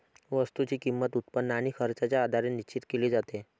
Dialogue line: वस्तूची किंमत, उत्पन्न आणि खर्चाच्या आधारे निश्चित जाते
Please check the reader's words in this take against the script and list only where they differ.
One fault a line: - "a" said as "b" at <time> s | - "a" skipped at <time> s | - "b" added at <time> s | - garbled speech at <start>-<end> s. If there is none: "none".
- "केली" added at 2.9 s